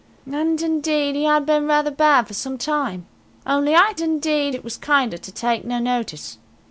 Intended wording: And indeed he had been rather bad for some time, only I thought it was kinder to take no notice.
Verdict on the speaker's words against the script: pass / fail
fail